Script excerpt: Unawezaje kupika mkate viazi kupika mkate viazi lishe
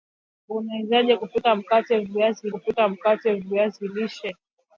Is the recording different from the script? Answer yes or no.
no